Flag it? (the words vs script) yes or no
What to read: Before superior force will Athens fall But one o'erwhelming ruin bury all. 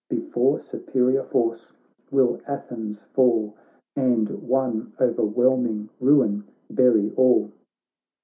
yes